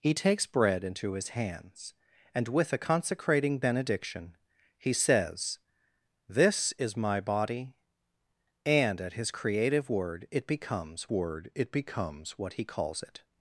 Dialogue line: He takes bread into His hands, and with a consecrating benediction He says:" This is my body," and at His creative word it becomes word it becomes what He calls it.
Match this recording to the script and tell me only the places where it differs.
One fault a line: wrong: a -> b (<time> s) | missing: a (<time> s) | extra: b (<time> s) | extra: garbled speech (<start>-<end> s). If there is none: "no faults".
no faults